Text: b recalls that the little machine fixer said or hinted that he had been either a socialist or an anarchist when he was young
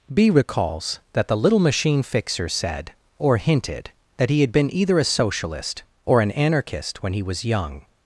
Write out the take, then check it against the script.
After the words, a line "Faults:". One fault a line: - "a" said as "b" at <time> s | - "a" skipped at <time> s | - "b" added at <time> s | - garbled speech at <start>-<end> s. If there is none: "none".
b recalls that the little machine fixer said or hinted that he had been either a socialist or an anarchist when he was young
Faults:
none